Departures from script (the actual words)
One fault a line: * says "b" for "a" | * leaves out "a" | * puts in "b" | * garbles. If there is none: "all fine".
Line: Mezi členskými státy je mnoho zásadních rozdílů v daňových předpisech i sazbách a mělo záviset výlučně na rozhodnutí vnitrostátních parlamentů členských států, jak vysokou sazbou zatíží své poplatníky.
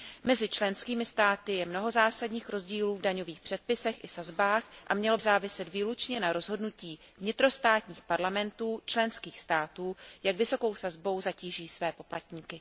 all fine